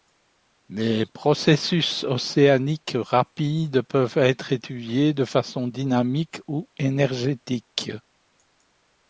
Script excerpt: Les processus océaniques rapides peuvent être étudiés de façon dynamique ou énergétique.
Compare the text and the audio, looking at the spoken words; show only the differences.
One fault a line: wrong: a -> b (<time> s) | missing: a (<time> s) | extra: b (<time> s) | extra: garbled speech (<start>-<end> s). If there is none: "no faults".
no faults